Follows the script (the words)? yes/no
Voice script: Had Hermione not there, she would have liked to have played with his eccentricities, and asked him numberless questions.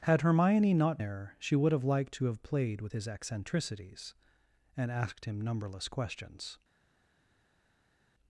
yes